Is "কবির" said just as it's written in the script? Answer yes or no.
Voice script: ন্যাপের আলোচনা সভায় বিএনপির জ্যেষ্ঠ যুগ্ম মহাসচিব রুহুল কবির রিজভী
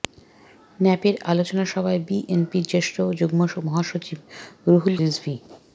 no